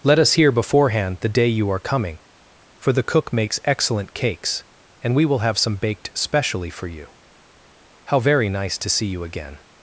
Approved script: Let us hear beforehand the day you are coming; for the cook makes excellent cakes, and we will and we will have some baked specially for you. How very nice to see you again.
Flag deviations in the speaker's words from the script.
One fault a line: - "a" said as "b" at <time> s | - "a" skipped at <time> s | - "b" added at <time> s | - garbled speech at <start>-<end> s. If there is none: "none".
- "and we will" skipped at 5.4 s